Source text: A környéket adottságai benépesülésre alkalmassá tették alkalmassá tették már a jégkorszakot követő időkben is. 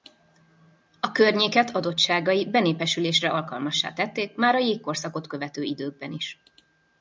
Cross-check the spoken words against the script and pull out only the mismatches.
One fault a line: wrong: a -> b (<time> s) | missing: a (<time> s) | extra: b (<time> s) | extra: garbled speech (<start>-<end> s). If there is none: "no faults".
missing: alkalmassá tették (4.3 s)